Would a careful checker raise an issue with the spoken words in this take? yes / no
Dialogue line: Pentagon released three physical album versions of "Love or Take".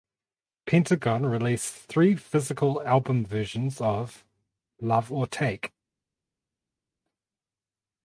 no